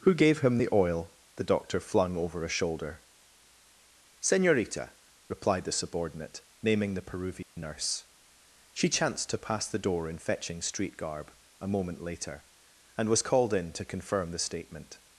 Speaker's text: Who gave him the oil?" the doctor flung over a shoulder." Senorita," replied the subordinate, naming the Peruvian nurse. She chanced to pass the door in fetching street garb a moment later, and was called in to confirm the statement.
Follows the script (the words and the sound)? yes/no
no